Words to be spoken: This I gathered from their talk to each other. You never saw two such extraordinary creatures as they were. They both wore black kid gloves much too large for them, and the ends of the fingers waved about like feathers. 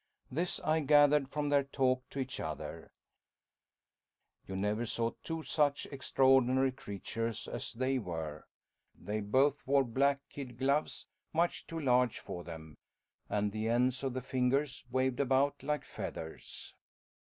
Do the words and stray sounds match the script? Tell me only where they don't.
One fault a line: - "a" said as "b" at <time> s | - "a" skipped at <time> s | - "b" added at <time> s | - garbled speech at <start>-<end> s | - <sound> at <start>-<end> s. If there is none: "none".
none